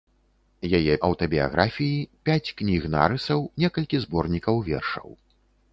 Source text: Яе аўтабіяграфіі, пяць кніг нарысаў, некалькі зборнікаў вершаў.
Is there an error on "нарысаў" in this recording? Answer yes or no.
no